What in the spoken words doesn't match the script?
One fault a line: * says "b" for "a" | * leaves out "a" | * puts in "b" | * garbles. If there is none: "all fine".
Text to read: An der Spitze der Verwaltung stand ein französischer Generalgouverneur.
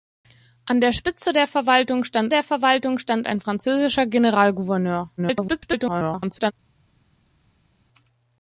* puts in "der Verwaltung stand"
* garbles